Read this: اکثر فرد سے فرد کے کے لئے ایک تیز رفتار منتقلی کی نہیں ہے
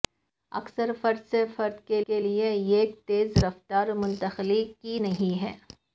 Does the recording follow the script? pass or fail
pass